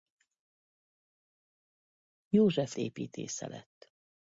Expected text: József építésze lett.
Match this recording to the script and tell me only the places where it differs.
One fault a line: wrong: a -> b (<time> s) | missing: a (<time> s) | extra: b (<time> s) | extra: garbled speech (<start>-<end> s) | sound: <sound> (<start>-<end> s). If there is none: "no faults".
no faults